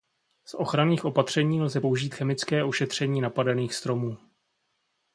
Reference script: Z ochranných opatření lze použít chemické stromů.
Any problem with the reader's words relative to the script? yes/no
yes